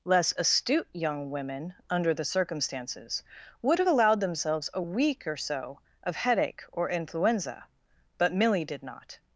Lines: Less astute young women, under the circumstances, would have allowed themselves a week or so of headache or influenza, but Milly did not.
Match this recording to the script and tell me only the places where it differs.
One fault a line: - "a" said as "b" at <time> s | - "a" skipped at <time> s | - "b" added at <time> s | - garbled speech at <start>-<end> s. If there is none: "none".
none